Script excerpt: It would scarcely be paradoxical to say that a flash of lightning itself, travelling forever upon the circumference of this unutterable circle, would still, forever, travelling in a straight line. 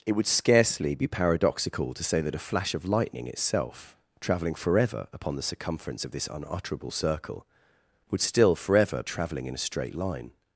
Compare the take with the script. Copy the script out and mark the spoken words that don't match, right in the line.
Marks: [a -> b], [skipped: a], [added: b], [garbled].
It would scarcely be paradoxical to say that a flash of lightning itself, travelling forever upon the circumference of this unutterable circle, would still, forever, travelling in a straight line.